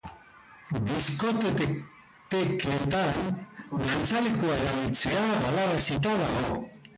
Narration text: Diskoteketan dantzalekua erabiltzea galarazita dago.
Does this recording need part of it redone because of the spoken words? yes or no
no